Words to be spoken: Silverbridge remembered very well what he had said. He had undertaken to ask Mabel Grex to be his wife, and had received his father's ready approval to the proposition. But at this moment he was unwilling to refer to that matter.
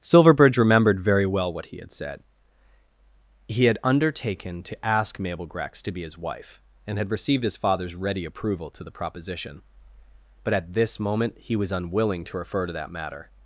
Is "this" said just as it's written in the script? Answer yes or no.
yes